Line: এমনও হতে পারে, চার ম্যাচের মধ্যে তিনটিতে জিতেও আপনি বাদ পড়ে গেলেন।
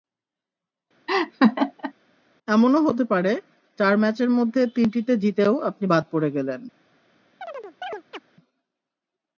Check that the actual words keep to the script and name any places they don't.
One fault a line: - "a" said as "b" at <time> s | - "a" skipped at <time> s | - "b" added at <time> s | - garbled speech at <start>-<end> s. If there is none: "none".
none